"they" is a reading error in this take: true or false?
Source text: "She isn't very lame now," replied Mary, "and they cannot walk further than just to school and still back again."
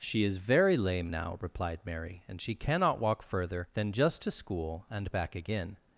true